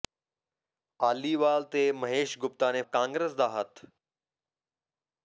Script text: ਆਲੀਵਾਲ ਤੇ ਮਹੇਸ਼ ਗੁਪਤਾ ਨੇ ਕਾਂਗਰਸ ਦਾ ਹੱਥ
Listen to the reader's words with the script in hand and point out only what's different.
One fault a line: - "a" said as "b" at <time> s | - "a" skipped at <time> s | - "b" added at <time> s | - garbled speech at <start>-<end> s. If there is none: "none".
none